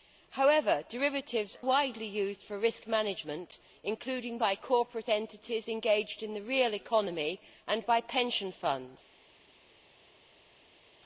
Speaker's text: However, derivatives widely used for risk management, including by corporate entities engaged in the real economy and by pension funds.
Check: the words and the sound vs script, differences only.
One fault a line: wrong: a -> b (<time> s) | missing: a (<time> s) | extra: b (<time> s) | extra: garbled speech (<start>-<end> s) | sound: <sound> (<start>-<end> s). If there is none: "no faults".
no faults